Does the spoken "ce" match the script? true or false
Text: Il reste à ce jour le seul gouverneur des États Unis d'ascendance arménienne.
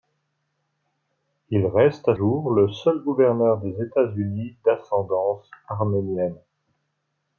false